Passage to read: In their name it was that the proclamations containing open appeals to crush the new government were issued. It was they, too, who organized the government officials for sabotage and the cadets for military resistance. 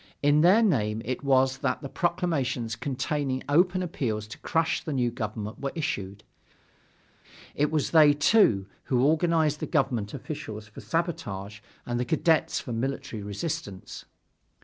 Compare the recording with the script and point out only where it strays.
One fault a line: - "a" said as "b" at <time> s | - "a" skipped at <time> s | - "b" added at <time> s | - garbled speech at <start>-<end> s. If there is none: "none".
none